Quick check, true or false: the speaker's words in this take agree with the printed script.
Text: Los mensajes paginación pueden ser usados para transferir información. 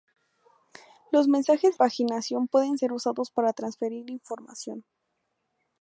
true